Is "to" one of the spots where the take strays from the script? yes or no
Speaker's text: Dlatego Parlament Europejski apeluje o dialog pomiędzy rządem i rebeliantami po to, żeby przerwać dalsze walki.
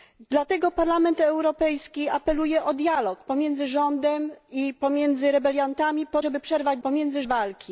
yes